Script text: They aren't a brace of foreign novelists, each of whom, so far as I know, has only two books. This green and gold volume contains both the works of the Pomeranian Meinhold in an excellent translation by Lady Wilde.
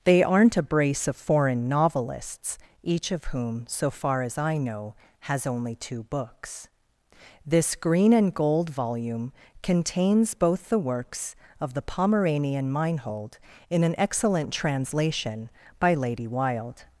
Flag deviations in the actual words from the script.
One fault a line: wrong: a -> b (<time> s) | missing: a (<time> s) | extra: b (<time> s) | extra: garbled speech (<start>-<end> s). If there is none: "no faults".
no faults